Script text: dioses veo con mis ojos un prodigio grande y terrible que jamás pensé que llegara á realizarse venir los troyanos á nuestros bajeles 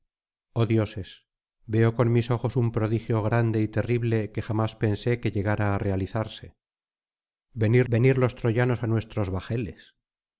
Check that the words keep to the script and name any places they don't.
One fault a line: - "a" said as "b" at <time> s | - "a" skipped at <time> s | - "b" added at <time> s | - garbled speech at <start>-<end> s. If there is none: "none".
- "venir" added at 7.9 s